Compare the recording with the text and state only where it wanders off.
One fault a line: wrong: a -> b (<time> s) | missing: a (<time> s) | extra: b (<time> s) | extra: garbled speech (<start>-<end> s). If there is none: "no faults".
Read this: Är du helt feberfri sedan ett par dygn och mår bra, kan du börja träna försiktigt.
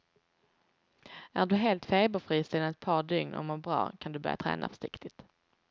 no faults